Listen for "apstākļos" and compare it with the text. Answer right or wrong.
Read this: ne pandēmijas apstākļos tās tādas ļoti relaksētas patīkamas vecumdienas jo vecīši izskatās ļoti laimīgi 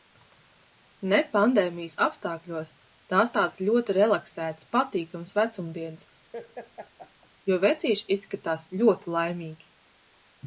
right